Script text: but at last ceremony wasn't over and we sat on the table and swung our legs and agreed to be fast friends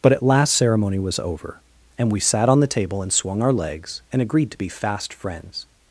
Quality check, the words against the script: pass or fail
fail